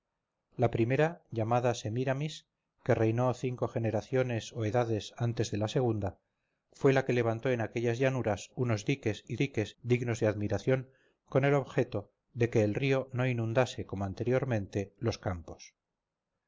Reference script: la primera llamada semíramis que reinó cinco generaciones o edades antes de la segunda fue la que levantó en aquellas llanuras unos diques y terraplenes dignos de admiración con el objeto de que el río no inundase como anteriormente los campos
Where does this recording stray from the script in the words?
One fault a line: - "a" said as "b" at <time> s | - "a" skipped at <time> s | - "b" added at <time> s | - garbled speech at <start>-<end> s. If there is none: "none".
- "terraplenes" said as "diques" at 9.4 s